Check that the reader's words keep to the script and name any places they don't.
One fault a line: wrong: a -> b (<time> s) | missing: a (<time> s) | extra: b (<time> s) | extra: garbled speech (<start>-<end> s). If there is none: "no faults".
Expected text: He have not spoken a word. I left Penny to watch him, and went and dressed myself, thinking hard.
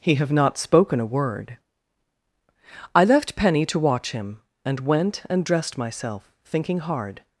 no faults